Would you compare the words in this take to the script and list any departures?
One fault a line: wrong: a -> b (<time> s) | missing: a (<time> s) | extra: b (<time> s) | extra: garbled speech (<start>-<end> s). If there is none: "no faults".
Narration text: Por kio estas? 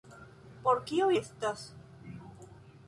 no faults